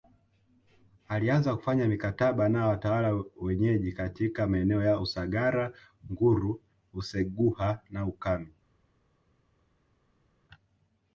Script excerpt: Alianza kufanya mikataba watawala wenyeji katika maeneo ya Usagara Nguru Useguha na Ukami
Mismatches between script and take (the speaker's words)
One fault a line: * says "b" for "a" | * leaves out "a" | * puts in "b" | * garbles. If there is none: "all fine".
* puts in "na"